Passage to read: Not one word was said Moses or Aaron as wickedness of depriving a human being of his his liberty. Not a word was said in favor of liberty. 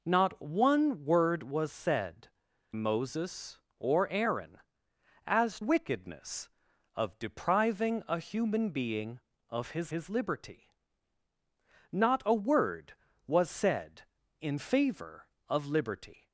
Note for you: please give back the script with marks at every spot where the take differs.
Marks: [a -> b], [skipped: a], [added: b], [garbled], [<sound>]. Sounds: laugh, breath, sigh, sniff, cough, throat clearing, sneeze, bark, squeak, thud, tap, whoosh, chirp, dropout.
Not one word was said Moses or Aaron as wickedness of depriving a human being of his his liberty. Not a word was said in favor of liberty.